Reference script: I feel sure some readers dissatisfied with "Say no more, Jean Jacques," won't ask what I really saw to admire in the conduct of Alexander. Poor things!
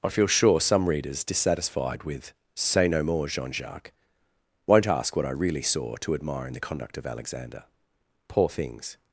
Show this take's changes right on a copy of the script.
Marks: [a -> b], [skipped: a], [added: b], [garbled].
I feel sure some readers dissatisfied with "Say no more, Jean Jacques," won't ask what I really saw to admire in the conduct of Alexander. Poor things!